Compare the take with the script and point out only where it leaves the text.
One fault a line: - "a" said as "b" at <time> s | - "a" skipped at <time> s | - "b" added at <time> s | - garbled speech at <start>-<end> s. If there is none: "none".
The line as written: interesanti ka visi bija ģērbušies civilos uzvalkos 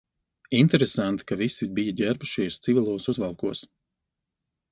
none